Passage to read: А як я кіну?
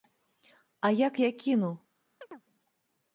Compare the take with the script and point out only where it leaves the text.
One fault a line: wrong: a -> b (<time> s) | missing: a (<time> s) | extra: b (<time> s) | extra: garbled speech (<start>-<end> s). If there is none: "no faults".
no faults